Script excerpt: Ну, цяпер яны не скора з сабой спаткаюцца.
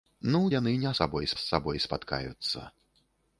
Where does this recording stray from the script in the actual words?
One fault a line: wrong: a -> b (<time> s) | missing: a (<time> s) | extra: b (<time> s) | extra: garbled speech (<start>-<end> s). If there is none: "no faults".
missing: цяпер (0.4 s)
wrong: скора -> сабой (1.0 s)